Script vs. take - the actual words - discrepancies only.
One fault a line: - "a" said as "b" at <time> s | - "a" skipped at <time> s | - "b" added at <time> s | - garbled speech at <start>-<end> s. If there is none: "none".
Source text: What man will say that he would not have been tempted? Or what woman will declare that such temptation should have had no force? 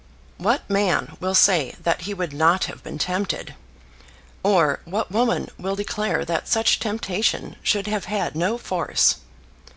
none